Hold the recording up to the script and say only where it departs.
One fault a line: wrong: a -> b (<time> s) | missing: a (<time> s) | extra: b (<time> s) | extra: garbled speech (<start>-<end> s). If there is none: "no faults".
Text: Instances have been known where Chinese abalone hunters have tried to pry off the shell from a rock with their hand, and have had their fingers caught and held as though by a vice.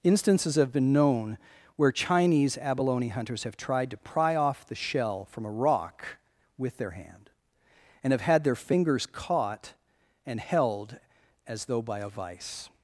no faults